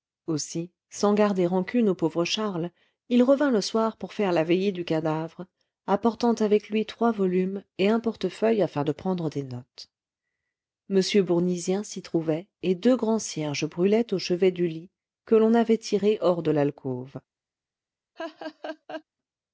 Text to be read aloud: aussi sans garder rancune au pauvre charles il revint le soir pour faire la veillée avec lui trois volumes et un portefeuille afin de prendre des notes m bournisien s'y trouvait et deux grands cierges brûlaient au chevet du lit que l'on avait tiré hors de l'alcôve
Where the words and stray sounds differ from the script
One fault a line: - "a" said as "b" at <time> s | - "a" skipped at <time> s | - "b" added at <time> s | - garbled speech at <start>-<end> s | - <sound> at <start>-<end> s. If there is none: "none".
- "du cadavre apportant" added at 4.7 s
- laugh at 18.2-19.0 s